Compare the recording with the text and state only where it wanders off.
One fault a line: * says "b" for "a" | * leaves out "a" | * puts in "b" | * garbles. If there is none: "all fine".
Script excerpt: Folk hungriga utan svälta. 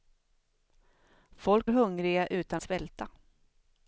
all fine